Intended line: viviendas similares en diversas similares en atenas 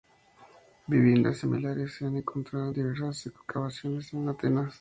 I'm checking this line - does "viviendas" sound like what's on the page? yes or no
yes